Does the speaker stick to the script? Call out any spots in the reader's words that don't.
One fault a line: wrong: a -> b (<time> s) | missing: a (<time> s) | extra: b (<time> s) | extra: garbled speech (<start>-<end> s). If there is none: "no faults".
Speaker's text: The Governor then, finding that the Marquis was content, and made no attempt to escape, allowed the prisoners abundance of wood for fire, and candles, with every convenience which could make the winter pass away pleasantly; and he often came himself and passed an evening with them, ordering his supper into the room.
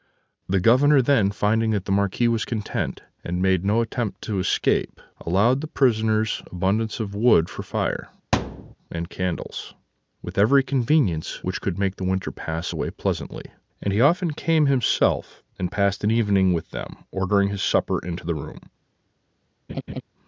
no faults